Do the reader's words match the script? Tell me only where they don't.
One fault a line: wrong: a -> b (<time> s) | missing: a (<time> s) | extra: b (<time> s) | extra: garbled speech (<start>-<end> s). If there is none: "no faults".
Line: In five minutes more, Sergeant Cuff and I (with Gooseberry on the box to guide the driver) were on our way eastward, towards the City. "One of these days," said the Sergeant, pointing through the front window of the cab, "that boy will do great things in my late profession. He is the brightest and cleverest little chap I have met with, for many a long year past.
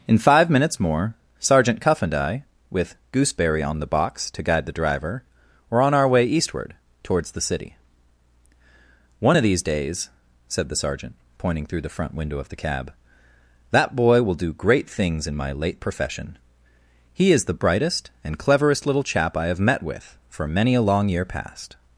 no faults